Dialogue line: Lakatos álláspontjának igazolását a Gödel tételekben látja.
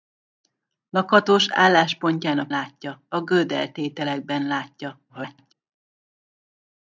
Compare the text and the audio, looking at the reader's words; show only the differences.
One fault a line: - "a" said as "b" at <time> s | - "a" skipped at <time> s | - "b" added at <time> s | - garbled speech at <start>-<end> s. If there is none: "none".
- "igazolását" said as "látja" at 2.5 s
- garbled speech at 5.1-5.5 s